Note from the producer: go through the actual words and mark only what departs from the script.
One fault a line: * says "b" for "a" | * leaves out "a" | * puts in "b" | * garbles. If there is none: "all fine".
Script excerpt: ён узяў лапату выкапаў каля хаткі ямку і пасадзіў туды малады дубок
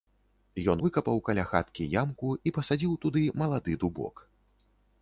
* leaves out "узяў лапату"